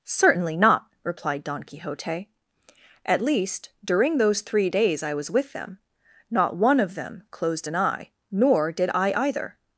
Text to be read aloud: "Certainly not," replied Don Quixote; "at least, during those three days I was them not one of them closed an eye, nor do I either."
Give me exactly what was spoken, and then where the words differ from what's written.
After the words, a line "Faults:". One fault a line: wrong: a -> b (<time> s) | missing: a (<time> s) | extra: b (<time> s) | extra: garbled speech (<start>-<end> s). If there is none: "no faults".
"Certainly not," replied Don Quixote; "at least, during those three days I was with them not one of them closed an eye, nor did I either."
Faults:
extra: with (5.3 s)
wrong: do -> did (8.7 s)